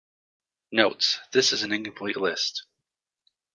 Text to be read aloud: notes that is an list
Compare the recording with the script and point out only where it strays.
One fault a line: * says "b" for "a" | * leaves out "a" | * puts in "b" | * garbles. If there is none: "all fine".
* says "this" for "that"
* puts in "incomplete"